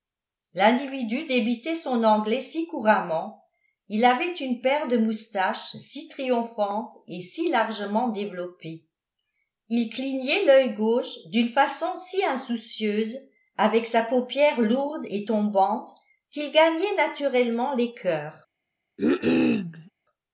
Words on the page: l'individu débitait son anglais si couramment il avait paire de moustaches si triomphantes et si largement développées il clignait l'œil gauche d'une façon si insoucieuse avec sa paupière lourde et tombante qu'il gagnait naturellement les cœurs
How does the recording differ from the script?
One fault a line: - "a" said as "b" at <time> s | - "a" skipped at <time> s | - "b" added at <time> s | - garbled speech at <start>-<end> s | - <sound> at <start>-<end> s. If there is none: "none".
- "une" added at 4.3 s
- cough at 19.0-19.9 s